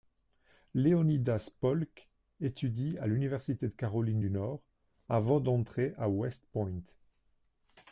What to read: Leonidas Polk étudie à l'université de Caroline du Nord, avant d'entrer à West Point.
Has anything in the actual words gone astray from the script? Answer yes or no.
no